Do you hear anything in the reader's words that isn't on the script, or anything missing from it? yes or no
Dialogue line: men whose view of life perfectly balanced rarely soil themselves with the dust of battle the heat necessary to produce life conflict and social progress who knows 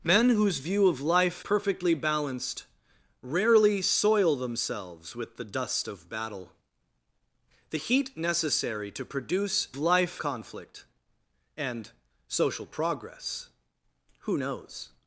no